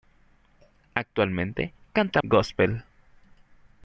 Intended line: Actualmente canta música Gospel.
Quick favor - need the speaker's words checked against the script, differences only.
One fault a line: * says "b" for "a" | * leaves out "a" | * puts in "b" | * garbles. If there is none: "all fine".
* leaves out "música"